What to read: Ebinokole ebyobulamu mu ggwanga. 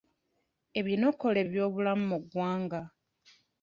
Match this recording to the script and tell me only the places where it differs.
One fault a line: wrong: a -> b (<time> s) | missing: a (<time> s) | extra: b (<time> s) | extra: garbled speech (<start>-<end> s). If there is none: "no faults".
no faults